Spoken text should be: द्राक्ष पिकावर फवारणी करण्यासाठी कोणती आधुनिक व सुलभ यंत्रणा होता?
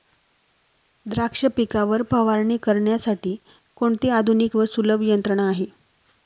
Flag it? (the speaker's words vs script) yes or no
yes